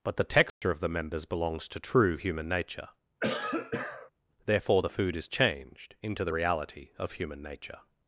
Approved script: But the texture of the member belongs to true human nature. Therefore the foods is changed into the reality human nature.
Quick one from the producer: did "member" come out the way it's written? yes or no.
no